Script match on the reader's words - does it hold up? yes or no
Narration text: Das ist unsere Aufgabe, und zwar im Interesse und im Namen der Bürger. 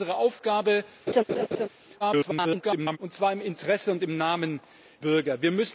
no